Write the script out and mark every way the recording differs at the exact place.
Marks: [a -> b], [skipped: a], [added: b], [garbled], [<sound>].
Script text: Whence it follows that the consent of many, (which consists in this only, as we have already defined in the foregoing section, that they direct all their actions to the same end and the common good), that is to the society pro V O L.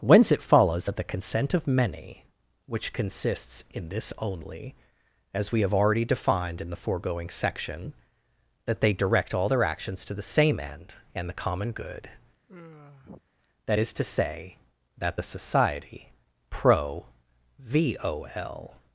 Whence it follows that the consent of many, (which consists in this only, as we have already defined in the foregoing section, that they direct all their actions to the same end and the common good), [sigh] that is to [added: say that] the society pro V O L.